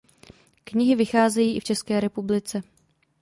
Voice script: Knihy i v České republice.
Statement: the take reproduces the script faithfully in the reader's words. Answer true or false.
false